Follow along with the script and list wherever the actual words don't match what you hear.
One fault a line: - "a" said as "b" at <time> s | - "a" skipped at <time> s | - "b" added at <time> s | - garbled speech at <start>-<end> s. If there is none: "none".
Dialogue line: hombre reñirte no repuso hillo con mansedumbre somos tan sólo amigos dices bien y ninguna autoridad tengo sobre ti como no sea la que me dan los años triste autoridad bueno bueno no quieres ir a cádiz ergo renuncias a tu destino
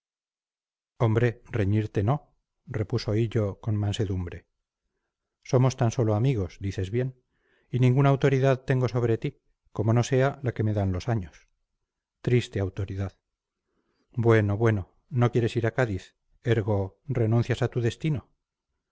none